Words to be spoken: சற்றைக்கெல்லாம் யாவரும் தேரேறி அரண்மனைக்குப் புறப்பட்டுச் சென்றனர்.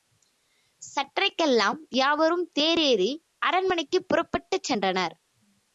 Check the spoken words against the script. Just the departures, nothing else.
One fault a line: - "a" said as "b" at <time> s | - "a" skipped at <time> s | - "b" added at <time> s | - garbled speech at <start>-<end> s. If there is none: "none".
none